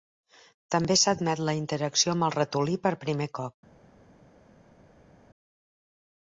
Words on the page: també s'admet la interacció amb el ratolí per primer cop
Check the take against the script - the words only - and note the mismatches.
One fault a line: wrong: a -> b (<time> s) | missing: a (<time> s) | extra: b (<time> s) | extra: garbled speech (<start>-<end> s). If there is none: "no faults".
no faults